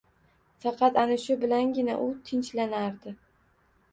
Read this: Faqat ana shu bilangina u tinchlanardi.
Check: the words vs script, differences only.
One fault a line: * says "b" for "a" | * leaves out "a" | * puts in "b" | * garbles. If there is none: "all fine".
all fine